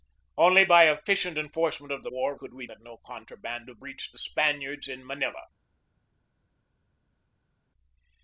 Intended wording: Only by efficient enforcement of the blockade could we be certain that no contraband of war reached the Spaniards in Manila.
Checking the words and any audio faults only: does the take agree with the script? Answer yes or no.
no